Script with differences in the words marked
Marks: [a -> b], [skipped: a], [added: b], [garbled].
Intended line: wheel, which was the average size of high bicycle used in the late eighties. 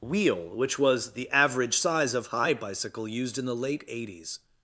wheel, which was the average size of high bicycle used in the late eighties.